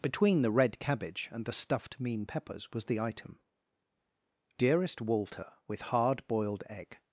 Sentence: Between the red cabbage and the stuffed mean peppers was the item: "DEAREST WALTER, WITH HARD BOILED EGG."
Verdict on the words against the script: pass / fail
pass